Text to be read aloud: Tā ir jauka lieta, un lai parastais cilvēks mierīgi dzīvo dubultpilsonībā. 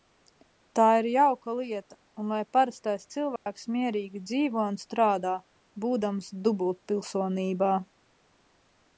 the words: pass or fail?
fail